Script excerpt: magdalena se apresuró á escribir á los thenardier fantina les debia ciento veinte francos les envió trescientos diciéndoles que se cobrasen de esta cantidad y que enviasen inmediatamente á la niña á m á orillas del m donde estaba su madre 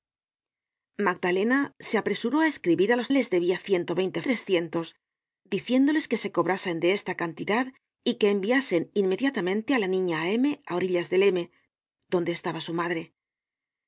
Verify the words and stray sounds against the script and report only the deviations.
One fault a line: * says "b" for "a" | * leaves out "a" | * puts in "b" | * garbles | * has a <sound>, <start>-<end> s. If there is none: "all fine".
* leaves out "thenardier fantina"
* leaves out "francos les envió"